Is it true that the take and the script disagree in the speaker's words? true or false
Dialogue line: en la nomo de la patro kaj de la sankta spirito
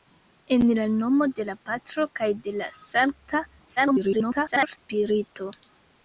true